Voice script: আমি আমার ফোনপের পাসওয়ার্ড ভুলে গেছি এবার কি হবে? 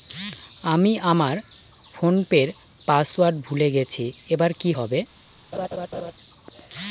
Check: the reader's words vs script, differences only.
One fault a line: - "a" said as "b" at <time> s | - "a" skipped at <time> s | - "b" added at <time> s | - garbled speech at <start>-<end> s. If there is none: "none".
none